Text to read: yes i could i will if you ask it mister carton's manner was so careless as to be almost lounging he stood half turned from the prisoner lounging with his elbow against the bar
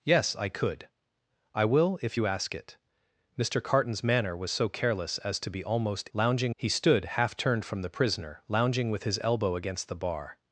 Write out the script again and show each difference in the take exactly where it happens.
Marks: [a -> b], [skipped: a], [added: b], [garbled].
yes i could i will if you ask it mister carton's manner was so careless as to be almost lounging he stood half turned from the prisoner lounging with his elbow against the bar